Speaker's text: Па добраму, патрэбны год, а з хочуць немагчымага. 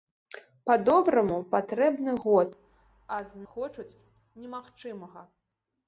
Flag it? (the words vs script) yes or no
no